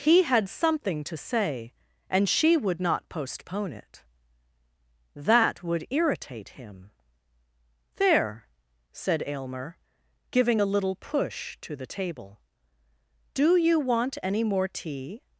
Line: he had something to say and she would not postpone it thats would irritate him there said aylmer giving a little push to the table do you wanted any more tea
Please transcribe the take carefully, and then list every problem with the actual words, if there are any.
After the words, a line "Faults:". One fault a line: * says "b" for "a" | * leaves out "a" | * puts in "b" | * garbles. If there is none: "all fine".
he had something to say and she would not postpone it that would irritate him there said aylmer giving a little push to the table do you want any more tea
Faults:
* says "that" for "thats"
* says "want" for "wanted"